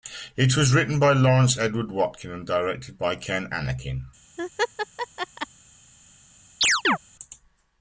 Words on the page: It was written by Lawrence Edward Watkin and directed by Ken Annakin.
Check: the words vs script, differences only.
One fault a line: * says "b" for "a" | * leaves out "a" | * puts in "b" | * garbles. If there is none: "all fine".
all fine